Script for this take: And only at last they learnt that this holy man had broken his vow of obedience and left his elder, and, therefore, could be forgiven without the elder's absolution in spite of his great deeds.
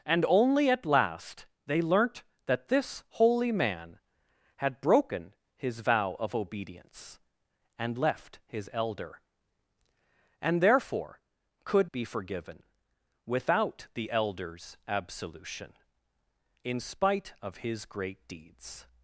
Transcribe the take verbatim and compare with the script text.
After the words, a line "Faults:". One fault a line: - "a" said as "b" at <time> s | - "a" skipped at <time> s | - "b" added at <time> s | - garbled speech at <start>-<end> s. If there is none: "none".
And only at last they learnt that this holy man had broken his vow of obedience and left his elder, and, therefore, could be forgiven without the elder's absolution in spite of his great deeds.
Faults:
none